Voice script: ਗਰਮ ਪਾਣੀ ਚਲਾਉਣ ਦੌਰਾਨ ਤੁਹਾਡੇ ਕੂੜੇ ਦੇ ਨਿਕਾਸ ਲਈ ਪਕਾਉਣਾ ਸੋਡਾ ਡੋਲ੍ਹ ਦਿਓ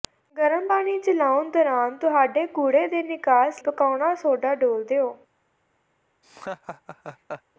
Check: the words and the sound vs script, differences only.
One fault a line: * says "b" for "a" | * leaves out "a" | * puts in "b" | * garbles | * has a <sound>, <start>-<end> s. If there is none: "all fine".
* leaves out "ਲਈ"
* has a laugh, 6.2-7.4 s